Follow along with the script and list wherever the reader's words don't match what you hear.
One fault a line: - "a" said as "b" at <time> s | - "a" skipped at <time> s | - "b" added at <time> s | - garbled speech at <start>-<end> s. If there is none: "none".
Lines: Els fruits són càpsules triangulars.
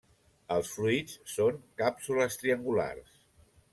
none